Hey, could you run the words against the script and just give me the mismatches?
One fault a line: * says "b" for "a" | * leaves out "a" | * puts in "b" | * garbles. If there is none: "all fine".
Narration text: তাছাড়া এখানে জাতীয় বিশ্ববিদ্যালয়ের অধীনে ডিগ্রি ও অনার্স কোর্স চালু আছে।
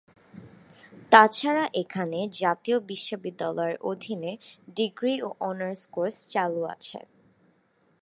all fine